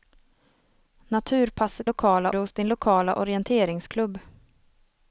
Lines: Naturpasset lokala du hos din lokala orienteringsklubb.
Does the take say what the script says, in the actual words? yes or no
yes